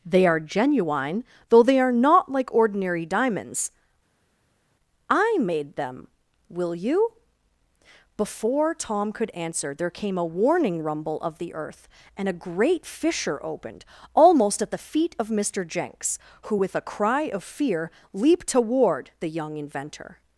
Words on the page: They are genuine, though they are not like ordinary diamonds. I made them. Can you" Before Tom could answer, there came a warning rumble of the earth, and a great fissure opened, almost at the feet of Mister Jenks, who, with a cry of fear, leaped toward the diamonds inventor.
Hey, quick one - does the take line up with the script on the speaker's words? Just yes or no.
no